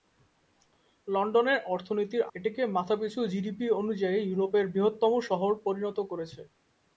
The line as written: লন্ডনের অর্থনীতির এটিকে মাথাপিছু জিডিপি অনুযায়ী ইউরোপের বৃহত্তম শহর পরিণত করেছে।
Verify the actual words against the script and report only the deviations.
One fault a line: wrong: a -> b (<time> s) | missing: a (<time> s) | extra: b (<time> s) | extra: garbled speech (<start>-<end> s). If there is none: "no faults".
no faults